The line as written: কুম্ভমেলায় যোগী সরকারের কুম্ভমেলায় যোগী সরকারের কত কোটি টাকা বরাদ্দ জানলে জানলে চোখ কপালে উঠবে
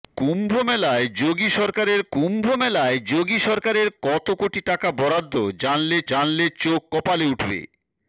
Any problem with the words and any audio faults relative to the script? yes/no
no